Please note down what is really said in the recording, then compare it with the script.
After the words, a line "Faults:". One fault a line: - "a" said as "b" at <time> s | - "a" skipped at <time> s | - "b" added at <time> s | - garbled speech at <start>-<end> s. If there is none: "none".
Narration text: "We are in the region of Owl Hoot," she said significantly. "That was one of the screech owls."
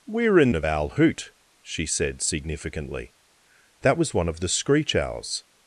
"We are in of Owl Hoot," she said significantly. "That was one of the screech owls."
Faults:
- "the region" skipped at 0.5 s